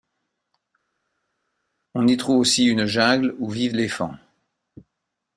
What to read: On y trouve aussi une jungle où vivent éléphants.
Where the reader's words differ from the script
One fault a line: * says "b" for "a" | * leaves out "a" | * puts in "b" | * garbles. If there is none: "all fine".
all fine